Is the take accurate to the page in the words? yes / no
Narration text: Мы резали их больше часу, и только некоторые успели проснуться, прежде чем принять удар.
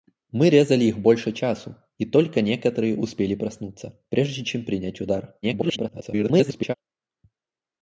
no